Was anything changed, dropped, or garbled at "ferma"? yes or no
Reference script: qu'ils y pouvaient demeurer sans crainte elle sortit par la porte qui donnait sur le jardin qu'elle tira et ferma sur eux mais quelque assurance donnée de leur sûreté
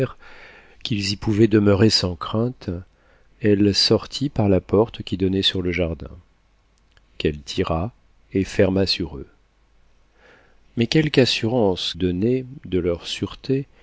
no